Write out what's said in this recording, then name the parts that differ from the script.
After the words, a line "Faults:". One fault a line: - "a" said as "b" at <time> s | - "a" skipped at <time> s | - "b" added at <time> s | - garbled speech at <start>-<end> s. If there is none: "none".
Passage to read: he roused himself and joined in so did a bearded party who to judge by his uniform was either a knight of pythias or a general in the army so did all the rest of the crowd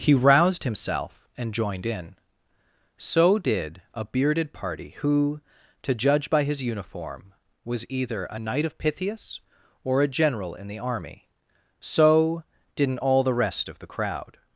he roused himself and joined in so did a bearded party who to judge by his uniform was either a knight of pythias or a general in the army so didn't all the rest of the crowd
Faults:
- "did" said as "didn't" at 12.8 s